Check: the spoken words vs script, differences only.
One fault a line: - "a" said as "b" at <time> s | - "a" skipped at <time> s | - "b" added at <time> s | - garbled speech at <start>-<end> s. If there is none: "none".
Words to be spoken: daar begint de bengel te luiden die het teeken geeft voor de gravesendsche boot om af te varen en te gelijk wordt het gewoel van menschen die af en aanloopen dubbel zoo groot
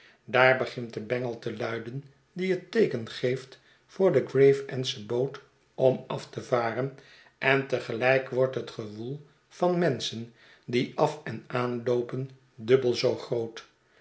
none